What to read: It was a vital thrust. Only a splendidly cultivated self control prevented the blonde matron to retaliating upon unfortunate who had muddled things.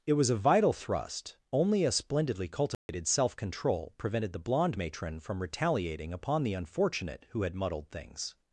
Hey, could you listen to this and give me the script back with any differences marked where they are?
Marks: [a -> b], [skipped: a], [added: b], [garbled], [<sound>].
It was a vital thrust. Only a splendidly cultivated [dropout] self control prevented the blonde matron [to -> from] retaliating upon [added: the] unfortunate who had muddled things.